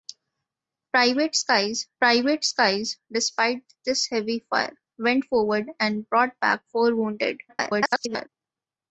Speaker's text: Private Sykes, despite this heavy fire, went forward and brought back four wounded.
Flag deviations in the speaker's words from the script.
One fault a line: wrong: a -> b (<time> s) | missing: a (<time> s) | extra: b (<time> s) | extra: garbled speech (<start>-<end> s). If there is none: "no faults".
extra: private Sykes (2.0 s)
extra: garbled speech (7.5-8.3 s)